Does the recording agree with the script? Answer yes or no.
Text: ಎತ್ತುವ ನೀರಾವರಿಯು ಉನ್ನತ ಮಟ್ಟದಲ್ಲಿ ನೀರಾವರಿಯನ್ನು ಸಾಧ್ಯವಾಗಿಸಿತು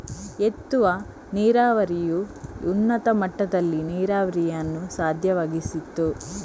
yes